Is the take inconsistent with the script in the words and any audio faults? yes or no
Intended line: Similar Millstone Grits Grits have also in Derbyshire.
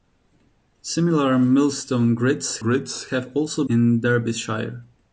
no